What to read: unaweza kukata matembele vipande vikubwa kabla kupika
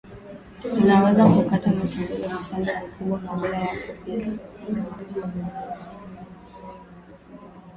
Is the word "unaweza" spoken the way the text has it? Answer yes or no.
yes